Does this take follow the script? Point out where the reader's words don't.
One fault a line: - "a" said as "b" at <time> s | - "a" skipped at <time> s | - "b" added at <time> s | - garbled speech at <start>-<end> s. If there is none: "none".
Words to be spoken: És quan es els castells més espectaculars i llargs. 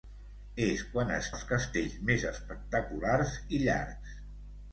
none